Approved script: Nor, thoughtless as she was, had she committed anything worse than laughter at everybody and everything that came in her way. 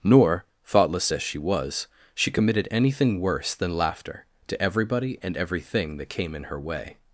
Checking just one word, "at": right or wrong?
wrong